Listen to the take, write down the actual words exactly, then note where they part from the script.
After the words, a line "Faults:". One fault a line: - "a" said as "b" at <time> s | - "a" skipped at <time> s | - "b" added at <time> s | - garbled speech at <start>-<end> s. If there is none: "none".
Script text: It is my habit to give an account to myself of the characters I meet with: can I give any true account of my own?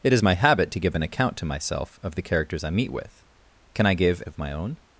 It is my habit to give an account to myself of the characters I meet with: can I give of my own?
Faults:
- "any true account" skipped at 4.2 s